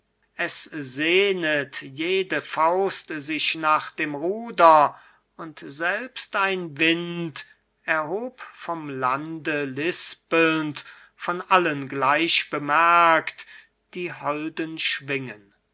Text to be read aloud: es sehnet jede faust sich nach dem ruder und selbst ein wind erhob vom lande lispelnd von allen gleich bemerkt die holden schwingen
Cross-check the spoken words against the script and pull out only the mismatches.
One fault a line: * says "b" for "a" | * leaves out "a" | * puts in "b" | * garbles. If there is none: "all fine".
all fine